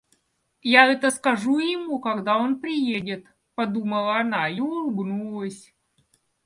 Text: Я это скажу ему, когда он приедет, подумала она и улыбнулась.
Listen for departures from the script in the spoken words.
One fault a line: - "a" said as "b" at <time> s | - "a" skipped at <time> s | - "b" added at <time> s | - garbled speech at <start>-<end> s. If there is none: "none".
none